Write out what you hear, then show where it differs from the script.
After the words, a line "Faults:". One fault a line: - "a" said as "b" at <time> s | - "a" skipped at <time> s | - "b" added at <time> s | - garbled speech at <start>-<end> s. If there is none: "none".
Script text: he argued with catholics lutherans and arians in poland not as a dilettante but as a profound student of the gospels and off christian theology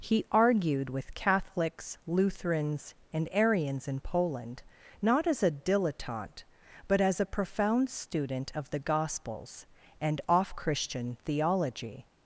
he argued with catholics lutherans and arians in poland not as a dilettante but as a profound student of the gospels and off christian theology
Faults:
none